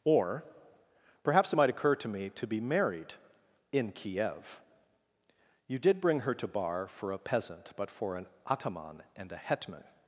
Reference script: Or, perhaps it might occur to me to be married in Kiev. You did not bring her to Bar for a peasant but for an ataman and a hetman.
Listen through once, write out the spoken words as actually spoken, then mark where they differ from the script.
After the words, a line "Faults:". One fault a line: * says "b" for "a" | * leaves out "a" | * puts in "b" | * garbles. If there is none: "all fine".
Or, perhaps it might occur to me to be married in Kiev. You did bring her to Bar for a peasant but for an ataman and a hetman.
Faults:
* leaves out "not"